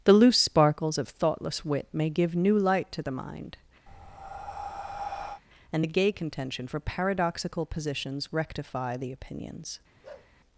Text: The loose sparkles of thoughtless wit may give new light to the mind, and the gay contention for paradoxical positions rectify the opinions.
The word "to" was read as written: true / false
true